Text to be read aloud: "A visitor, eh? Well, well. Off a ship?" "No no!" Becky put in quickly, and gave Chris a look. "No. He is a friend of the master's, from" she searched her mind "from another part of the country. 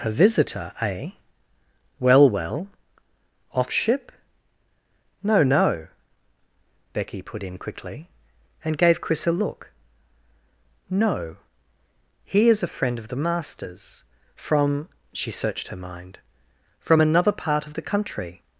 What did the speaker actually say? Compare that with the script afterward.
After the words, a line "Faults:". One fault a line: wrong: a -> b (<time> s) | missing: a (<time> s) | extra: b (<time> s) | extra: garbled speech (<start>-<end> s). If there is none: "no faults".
"A visitor, eh? Well, well. Off ship?" "No no!" Becky put in quickly, and gave Chris a look. "No. He is a friend of the master's, from" she searched her mind "from another part of the country.
Faults:
missing: a (3.7 s)